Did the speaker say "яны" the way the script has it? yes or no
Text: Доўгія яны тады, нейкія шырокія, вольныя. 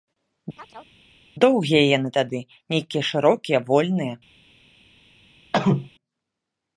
yes